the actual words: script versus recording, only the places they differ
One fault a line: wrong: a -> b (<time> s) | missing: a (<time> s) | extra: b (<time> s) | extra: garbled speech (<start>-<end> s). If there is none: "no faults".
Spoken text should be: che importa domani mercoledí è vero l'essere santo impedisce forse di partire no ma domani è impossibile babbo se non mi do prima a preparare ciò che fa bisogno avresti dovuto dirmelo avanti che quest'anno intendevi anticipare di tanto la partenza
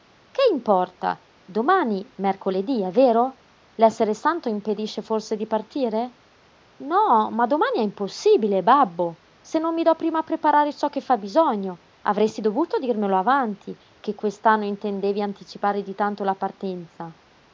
no faults